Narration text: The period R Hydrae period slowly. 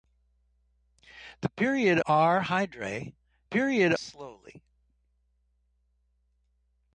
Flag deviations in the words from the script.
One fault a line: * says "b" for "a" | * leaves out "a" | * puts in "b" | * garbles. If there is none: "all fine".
all fine